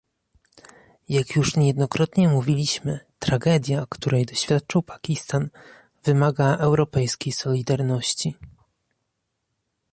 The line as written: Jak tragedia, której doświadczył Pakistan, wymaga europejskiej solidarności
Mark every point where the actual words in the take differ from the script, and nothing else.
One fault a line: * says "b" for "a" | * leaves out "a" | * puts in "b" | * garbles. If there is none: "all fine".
* puts in "już niejednokrotnie mówiliśmy"